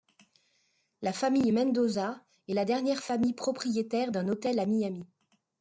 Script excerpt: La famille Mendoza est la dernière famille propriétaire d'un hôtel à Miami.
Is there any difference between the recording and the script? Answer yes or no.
no